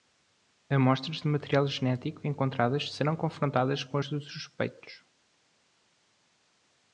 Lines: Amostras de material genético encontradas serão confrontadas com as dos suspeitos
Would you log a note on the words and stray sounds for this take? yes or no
no